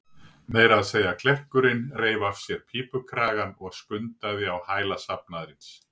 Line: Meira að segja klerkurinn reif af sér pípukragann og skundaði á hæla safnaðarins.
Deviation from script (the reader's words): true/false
false